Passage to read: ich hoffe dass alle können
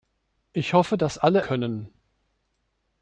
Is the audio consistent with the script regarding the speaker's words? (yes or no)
yes